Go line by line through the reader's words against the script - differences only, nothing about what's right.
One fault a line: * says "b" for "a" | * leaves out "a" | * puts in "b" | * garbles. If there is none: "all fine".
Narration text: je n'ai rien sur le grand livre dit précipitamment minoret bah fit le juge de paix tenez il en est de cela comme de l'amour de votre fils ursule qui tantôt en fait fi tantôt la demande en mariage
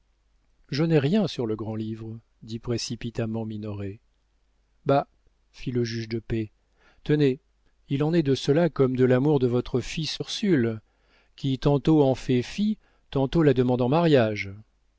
all fine